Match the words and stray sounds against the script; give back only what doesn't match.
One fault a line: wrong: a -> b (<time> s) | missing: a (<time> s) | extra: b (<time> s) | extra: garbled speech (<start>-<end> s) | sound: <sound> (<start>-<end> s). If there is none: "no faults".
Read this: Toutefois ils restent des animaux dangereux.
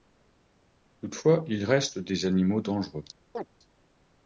sound: chirp (3.3-3.5 s)